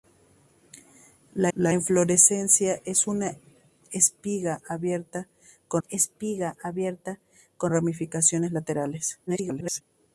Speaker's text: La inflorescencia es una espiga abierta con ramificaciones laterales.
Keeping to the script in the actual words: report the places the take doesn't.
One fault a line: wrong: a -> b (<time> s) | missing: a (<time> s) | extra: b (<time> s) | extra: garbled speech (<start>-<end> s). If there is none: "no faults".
extra: la (1.6 s)
extra: espiga abierta con (5.9 s)
extra: garbled speech (9.3-9.8 s)